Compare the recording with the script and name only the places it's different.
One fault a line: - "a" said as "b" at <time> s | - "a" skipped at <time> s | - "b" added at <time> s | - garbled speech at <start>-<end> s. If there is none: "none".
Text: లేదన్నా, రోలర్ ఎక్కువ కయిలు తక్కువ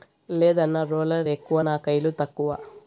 - "నా" added at 1.6 s